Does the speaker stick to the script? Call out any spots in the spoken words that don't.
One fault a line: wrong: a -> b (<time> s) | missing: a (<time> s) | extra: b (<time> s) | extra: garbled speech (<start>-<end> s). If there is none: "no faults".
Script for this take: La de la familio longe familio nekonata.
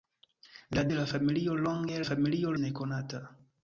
no faults